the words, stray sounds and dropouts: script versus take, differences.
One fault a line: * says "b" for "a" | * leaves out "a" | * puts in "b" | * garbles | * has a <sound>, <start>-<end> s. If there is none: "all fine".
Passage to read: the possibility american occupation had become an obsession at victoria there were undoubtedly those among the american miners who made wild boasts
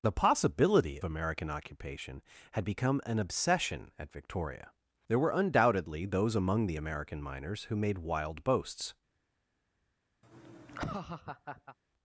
* has a laugh, 10.2-11.8 s